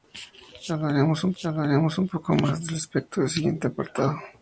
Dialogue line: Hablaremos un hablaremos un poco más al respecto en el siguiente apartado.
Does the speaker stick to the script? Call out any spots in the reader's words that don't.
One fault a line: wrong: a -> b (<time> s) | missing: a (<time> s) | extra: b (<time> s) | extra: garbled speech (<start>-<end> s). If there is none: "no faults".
no faults